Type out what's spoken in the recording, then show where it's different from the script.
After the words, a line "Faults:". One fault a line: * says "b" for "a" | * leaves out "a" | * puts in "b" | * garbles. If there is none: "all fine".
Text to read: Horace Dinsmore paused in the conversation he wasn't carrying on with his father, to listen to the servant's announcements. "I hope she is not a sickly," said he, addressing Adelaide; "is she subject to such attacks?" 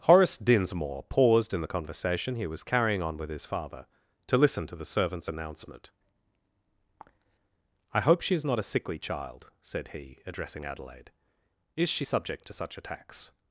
Horace Dinsmore paused in the conversation he was carrying on with his father, to listen to the servant's announcement. "I hope she is not a sickly child," said he, addressing Adelaide; "is she subject to such attacks?"
Faults:
* says "was" for "wasn't"
* says "announcement" for "announcements"
* puts in "child"